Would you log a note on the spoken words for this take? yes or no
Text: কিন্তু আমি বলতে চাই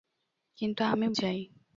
yes